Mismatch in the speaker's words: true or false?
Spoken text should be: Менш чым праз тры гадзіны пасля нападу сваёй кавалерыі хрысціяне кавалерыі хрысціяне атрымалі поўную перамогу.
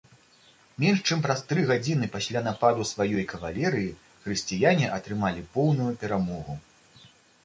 true